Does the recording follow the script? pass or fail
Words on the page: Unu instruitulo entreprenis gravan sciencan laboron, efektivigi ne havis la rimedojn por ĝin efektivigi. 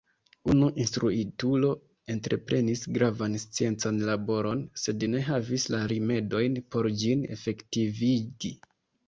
fail